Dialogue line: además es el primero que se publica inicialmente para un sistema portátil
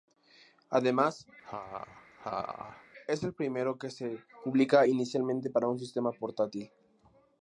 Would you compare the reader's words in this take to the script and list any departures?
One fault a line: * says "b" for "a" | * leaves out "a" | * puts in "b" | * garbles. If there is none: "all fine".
all fine